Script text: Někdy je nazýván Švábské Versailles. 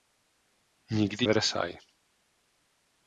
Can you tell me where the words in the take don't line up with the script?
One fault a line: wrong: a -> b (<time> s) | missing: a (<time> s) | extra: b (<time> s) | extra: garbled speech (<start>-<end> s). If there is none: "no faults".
missing: je nazýván Švábské (1.2 s)